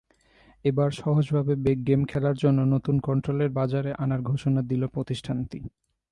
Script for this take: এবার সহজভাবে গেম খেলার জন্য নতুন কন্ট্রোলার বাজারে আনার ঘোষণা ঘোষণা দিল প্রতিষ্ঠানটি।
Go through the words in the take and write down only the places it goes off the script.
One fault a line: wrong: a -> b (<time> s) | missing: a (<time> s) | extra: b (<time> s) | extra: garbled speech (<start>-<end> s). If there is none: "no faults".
missing: ঘোষণা (4.6 s)